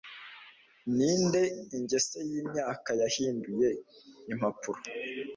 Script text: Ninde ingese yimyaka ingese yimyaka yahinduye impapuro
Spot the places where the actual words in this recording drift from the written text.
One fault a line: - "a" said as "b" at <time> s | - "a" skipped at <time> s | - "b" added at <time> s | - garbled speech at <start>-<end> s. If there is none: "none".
- "ingese yimyaka" skipped at 2.9 s